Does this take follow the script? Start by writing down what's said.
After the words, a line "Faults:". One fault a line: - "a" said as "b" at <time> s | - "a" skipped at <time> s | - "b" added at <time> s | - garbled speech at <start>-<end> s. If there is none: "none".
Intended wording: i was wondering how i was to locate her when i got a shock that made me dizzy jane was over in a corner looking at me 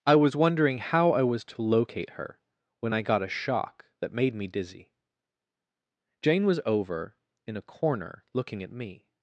i was wondering how i was to locate her when i got a shock that made me dizzy jane was over in a corner looking at me
Faults:
none